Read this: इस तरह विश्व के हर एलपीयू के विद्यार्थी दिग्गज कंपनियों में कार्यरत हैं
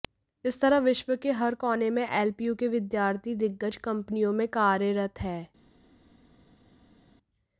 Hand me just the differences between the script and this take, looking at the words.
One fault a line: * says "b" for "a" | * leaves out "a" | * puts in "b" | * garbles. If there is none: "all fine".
* puts in "कोने में"